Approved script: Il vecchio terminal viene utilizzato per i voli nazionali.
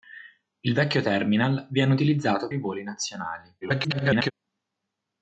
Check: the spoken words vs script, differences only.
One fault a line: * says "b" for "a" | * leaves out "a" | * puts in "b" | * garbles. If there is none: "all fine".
* leaves out "per"
* garbles